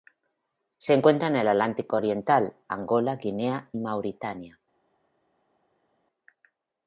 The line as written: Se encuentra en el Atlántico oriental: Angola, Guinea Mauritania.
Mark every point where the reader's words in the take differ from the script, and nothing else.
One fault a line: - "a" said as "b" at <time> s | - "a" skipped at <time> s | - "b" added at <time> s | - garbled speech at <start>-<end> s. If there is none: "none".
none